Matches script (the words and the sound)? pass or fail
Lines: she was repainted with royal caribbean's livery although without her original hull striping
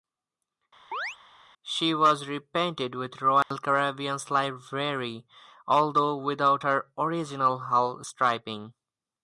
fail